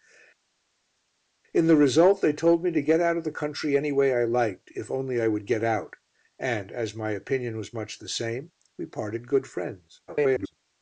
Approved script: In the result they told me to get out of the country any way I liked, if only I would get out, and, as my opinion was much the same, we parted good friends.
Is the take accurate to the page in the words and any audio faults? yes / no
no